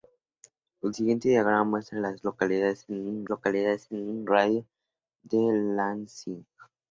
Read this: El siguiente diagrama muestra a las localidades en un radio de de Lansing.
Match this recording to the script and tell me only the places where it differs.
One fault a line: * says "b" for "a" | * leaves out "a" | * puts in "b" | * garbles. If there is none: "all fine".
* puts in "localidades en un"